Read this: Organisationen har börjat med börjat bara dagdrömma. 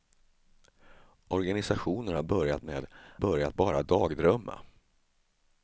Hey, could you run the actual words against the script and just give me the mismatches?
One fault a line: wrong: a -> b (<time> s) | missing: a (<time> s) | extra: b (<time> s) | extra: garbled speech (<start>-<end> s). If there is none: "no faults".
no faults